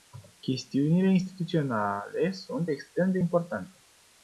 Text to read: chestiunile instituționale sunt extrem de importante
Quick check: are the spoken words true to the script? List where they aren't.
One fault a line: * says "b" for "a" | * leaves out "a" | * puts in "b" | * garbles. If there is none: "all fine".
all fine